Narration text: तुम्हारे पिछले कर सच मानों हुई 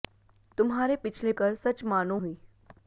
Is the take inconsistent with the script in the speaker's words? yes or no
no